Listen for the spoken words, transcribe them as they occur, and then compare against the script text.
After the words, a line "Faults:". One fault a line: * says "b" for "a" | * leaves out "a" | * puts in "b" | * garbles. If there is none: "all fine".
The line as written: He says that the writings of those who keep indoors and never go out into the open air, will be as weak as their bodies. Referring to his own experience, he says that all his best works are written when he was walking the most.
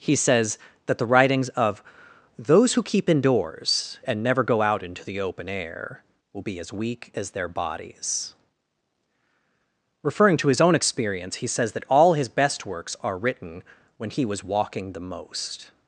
He says that the writings of those who keep indoors and never go out into the open air, will be as weak as their bodies. Referring to his own experience, he says that all his best works are written when he was walking the most.
Faults:
all fine